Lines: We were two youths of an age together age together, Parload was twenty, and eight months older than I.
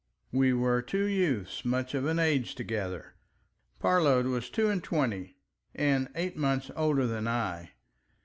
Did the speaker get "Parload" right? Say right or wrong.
wrong